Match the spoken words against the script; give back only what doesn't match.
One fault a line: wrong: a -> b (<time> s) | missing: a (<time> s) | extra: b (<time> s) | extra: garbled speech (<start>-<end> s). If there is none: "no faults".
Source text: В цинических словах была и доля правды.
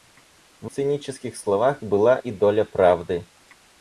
no faults